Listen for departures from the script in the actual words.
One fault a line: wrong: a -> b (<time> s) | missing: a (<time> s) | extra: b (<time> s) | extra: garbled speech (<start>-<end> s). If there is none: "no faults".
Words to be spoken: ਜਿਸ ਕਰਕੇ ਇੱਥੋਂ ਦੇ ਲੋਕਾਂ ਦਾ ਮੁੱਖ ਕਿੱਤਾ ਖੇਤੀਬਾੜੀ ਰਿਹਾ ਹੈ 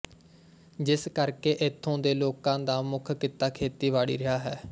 no faults